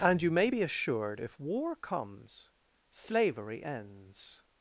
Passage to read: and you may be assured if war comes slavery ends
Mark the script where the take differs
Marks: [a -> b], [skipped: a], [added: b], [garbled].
and you may be assured if war comes slavery ends